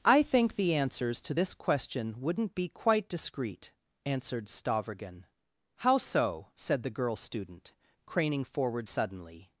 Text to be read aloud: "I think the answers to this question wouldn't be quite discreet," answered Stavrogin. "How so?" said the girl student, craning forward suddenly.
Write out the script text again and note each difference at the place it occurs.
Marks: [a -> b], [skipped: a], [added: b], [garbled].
"I think the answers to this question wouldn't be quite discreet," answered Stavrogin. "How so?" said the girl student, craning forward suddenly.